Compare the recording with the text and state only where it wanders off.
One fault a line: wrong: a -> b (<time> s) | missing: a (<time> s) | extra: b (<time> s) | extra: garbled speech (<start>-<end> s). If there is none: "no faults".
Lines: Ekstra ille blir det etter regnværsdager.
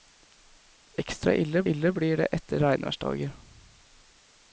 extra: ille (1.7 s)